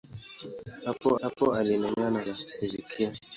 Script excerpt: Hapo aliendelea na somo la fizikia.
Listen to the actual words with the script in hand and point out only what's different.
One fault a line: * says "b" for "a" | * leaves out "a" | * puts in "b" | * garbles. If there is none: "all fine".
* puts in "hapo"
* leaves out "somo"